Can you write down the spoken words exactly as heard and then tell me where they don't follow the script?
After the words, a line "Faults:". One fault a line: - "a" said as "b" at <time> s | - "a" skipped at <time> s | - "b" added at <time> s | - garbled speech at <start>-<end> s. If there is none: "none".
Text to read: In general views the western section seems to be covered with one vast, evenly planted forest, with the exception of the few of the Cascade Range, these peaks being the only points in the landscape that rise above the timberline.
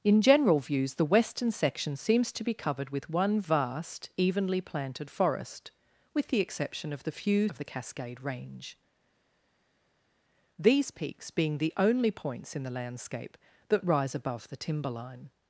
In general views the western section seems to be covered with one vast, evenly planted forest, with the exception of the few of the Cascade Range, these peaks being the only points in the landscape that rise above the timberline.
Faults:
none